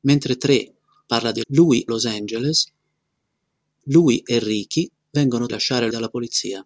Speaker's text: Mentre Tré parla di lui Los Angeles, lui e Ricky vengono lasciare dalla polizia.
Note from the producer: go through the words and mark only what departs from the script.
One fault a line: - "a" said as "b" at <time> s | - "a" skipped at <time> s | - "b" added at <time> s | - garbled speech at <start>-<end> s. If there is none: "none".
none